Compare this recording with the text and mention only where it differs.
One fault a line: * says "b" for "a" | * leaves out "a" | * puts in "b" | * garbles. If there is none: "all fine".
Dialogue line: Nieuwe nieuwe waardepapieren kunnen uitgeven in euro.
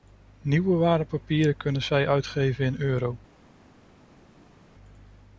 * leaves out "nieuwe"
* puts in "zij"